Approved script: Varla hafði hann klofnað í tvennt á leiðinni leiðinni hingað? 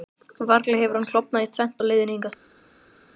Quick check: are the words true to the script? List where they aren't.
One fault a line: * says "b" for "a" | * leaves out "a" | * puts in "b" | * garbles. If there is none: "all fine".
* says "hefur" for "hafði"
* leaves out "leiðinni"